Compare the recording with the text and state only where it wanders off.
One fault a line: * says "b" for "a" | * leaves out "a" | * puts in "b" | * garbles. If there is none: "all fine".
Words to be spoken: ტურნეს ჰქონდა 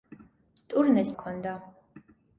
all fine